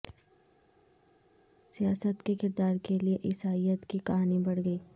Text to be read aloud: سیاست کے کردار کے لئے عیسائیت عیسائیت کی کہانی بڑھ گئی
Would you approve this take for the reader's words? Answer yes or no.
no